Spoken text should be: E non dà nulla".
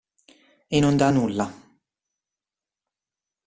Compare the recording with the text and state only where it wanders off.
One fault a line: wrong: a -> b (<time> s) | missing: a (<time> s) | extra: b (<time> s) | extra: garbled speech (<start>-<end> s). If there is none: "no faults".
no faults